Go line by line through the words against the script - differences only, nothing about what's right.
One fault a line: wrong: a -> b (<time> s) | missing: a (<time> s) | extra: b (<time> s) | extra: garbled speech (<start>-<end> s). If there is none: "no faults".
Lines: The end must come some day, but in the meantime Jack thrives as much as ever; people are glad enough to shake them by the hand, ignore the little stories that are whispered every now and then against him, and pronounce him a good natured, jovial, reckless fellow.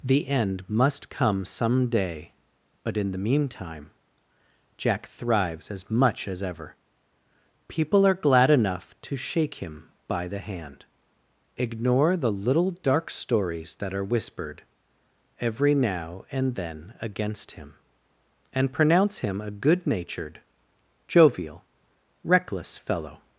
wrong: them -> him (9.6 s)
extra: dark (12.8 s)